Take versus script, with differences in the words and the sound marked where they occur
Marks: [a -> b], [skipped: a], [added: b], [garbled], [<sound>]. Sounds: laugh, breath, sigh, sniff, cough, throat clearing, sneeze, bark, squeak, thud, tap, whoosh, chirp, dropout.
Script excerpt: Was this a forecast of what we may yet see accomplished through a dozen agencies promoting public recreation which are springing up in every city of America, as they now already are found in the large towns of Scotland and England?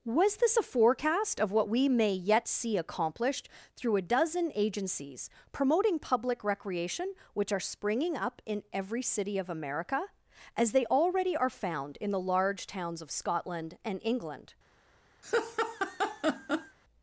Was this a forecast of what we may yet see accomplished through a dozen agencies promoting public recreation which are springing up in every city of America, as they [skipped: now] already are found in the large towns of Scotland and England? [laugh]